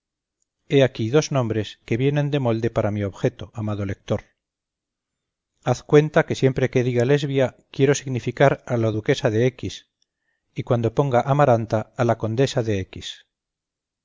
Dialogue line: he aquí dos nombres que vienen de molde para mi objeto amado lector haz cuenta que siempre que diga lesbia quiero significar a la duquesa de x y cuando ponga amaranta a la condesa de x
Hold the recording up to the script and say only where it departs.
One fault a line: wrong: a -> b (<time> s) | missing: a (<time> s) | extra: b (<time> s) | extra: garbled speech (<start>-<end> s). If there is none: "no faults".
no faults